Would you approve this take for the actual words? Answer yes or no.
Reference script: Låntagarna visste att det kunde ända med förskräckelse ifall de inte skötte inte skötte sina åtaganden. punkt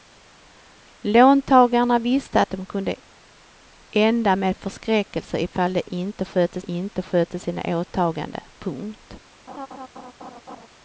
yes